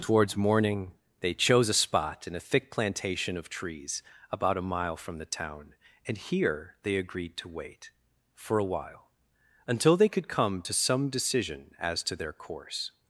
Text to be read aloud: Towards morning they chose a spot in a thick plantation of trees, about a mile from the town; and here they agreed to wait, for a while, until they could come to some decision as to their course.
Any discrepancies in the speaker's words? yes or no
no